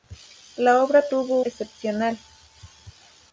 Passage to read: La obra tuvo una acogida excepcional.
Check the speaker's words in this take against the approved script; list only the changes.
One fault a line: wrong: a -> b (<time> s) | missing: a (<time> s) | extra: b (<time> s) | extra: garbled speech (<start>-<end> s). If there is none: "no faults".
missing: una acogida (1.4 s)